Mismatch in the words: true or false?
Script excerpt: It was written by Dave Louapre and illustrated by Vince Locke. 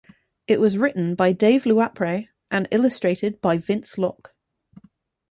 false